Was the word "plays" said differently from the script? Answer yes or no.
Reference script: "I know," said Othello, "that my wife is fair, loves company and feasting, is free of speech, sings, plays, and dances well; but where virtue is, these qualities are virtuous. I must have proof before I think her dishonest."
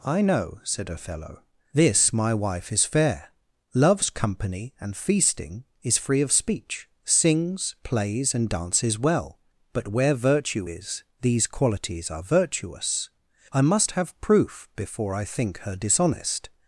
no